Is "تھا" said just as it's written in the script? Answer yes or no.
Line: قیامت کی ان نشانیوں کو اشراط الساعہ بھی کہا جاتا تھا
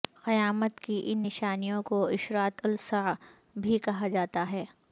no